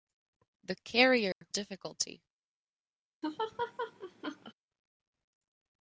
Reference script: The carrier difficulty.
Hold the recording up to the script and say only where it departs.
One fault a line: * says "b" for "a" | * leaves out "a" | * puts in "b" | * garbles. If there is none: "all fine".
all fine